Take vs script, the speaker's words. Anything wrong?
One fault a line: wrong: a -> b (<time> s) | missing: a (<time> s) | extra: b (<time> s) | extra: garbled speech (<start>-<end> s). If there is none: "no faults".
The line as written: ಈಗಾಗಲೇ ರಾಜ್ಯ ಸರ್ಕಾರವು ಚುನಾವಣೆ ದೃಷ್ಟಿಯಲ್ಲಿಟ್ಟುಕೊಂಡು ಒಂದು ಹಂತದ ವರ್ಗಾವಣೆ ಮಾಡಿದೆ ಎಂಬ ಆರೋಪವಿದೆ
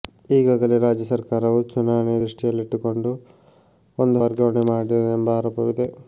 missing: ಹಂತದ (4.2 s)